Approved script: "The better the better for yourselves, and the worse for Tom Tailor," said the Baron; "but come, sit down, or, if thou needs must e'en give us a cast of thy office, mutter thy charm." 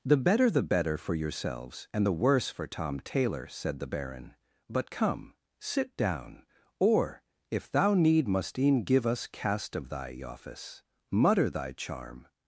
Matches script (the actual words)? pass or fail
fail